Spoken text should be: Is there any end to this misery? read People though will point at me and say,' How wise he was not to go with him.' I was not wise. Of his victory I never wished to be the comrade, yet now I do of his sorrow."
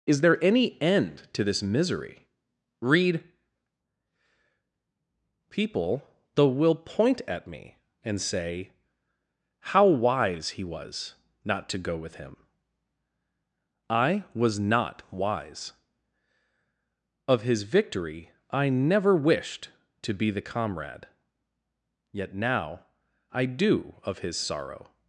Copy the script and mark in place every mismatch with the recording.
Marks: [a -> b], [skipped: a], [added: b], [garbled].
Is there any end to this misery? read People though will point at me and say,' How wise he was not to go with him.' I was not wise. Of his victory I never wished to be the comrade, yet now I do of his sorrow."